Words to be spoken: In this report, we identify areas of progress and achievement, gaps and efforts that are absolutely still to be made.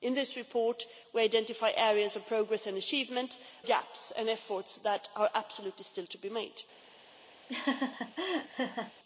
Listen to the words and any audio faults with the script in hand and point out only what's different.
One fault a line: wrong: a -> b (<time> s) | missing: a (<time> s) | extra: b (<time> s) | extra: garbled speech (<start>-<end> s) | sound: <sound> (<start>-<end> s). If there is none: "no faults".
sound: laugh (7.5-8.9 s)